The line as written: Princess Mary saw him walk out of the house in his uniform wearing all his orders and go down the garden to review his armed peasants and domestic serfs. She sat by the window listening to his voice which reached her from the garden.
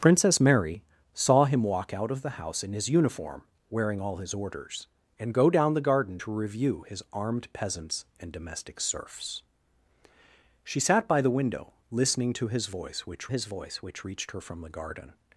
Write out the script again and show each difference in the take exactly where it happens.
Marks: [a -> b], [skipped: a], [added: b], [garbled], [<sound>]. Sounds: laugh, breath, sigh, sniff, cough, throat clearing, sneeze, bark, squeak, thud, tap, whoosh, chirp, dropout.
Princess Mary saw him walk out of the house in his uniform wearing all his orders and go down the garden to review his armed peasants and domestic serfs. She sat by the window listening to his voice which [added: his voice which] reached her from the garden.